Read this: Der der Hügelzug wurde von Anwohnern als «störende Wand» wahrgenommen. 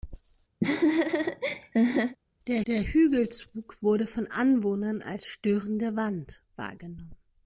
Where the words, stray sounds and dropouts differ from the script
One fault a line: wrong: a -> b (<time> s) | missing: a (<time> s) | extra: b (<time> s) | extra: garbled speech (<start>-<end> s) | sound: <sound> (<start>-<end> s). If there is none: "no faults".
sound: laugh (0.6-2.2 s)